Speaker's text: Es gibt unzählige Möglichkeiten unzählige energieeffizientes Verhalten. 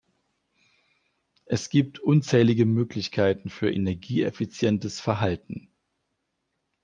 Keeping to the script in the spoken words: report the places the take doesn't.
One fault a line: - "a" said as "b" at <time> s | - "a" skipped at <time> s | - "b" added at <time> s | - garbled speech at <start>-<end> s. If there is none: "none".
- "unzählige" said as "für" at 3.5 s